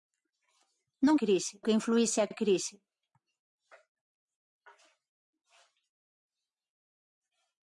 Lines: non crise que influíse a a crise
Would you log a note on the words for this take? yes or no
no